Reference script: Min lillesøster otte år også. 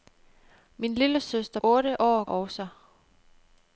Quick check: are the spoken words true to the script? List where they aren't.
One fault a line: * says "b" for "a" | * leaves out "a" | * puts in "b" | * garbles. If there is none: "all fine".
all fine